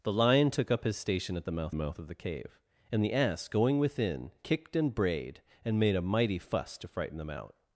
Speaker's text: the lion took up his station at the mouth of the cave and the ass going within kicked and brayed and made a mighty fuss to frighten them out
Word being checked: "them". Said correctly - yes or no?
yes